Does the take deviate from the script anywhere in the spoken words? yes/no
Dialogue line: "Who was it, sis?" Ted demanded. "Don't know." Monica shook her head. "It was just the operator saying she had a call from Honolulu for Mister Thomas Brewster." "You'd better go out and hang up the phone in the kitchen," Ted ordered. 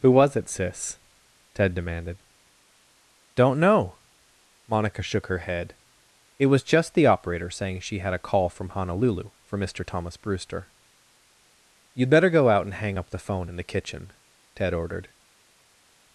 no